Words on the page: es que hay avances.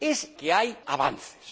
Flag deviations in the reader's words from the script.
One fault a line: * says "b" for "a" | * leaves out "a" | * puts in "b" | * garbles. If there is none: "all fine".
all fine